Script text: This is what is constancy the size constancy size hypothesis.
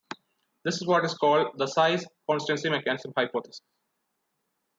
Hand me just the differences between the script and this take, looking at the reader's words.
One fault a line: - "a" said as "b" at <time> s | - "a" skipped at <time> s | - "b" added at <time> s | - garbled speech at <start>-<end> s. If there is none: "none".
- "constancy" said as "called" at 1.1 s
- "size" said as "mechanism" at 2.7 s